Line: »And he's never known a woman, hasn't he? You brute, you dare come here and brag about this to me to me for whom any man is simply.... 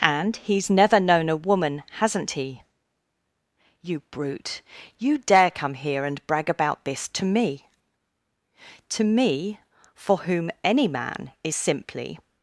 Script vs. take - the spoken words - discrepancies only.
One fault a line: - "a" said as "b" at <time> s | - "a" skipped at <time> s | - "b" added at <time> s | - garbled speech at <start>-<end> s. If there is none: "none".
none